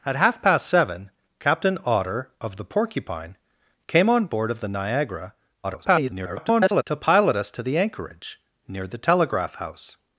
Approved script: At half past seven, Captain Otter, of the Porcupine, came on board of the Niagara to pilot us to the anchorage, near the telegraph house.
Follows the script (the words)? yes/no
no